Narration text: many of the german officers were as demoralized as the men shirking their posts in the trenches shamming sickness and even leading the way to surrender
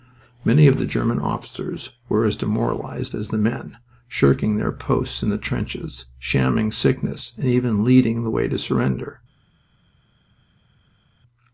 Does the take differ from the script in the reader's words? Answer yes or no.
no